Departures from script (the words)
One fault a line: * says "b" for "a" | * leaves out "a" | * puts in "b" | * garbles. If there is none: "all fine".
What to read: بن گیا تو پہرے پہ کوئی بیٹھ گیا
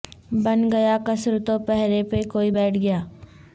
* puts in "قصر"